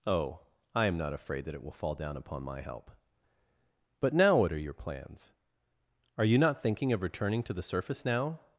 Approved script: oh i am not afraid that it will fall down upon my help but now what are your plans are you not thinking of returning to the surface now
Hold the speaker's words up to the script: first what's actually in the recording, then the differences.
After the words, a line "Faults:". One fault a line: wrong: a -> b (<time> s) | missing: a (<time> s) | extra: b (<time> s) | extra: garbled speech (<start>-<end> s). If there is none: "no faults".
oh i am not afraid that it will fall down upon my help but now what are your plans are you not thinking of returning to the surface now
Faults:
no faults